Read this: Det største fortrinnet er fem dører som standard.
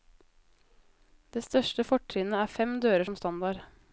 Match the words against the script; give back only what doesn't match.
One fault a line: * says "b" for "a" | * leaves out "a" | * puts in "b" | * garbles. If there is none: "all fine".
all fine